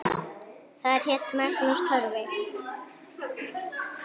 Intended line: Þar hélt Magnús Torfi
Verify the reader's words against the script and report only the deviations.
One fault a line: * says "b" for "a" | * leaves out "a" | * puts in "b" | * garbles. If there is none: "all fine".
all fine